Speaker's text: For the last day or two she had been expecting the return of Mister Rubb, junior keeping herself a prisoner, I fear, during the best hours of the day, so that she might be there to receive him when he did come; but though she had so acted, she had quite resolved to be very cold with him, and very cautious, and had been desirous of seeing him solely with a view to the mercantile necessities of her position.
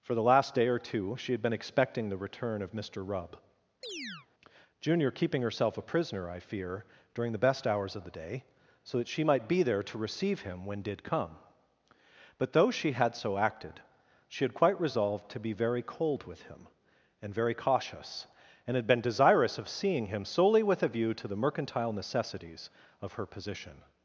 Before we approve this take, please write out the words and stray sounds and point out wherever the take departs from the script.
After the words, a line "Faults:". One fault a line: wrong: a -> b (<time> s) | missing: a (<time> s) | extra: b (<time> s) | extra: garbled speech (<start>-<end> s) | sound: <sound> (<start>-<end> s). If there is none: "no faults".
For the last day or two she had been expecting the return of Mister Rubb, junior keeping herself a prisoner, I fear, during the best hours of the day, so that she might be there to receive him when did come; but though she had so acted, she had quite resolved to be very cold with him, and very cautious, and had been desirous of seeing him solely with a view to the mercantile necessities of her position.
Faults:
sound: chirp (3.8-4.3 s)
missing: he (10.8 s)